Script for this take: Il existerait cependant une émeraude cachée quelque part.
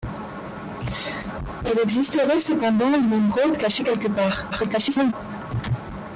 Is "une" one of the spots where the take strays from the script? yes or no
no